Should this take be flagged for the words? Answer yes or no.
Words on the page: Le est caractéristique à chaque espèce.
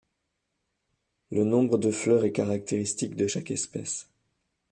yes